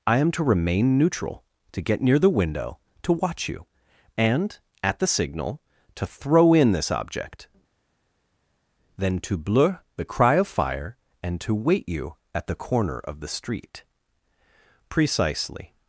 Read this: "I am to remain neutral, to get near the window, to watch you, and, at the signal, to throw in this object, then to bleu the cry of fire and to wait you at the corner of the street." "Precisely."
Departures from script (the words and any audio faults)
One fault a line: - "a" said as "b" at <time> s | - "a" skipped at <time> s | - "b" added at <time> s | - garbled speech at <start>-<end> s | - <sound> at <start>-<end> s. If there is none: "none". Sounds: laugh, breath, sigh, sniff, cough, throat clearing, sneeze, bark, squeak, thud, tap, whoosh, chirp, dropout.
none